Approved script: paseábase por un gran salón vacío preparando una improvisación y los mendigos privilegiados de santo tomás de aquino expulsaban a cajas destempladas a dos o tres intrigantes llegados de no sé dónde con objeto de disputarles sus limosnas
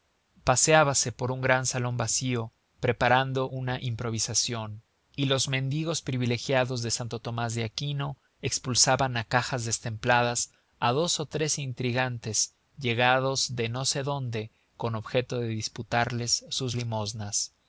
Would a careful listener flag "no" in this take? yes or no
no